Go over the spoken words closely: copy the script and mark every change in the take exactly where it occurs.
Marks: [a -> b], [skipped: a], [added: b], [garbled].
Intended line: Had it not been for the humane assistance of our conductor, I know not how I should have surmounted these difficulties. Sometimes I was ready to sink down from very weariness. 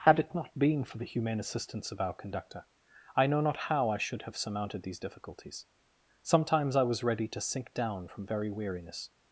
Had it not been for the humane assistance of our conductor, I know not how I should have surmounted these difficulties. Sometimes I was ready to sink down from very weariness.